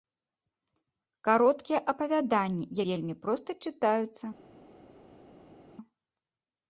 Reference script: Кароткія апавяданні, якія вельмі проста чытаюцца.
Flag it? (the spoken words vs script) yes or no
yes